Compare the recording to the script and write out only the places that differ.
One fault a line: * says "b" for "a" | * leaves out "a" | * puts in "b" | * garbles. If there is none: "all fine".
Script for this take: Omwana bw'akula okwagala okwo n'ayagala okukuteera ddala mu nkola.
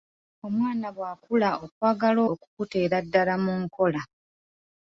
* leaves out "okwo n'ayagala"